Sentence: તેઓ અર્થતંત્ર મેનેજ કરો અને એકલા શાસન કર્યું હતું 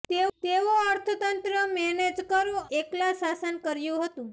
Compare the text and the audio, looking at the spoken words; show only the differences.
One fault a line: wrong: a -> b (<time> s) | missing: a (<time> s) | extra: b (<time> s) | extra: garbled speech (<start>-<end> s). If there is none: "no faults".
missing: અને (2.6 s)